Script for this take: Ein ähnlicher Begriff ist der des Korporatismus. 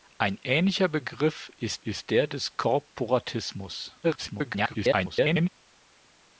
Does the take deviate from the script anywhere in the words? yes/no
yes